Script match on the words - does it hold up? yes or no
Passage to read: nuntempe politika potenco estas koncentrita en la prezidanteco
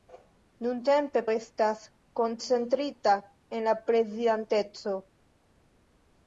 no